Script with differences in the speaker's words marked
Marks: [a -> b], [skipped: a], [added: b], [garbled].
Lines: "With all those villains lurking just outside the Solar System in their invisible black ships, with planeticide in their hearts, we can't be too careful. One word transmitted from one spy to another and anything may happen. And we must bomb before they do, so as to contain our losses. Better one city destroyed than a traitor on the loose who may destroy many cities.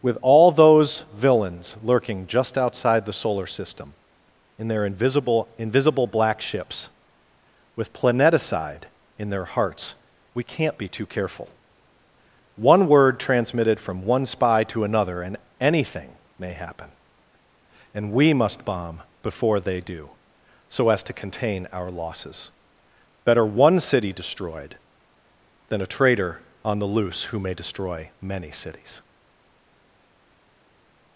"With all those villains lurking just outside the Solar System in their invisible [added: invisible] black ships, with planeticide in their hearts, we can't be too careful. One word transmitted from one spy to another and anything may happen. And we must bomb before they do, so as to contain our losses. Better one city destroyed than a traitor on the loose who may destroy many cities.